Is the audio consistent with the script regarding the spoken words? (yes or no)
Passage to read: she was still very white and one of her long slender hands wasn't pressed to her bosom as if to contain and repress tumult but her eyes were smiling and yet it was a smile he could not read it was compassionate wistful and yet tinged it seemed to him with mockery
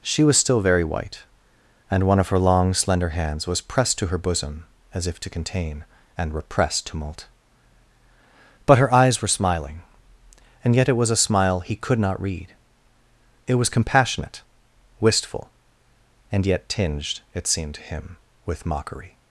no